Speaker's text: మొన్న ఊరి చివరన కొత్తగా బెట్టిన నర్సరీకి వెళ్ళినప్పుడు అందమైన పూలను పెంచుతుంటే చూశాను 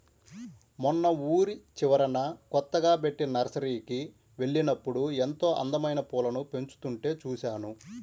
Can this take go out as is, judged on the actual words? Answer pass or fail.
fail